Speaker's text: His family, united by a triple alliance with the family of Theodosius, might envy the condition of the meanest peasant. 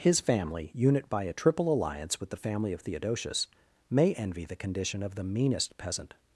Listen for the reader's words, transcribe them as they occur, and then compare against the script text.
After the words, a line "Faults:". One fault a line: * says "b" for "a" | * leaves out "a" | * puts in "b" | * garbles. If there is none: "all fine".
His family, unit by a triple alliance with the family of Theodosius, may envy the condition of the meanest peasant.
Faults:
* says "unit" for "united"
* says "may" for "might"